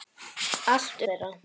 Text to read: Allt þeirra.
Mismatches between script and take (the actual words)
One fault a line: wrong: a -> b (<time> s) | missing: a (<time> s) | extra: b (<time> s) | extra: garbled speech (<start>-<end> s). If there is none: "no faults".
no faults